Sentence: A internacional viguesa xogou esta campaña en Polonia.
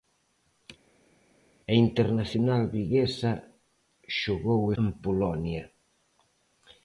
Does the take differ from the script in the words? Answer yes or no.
yes